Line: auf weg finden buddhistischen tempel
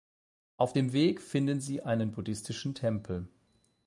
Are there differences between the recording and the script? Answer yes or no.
yes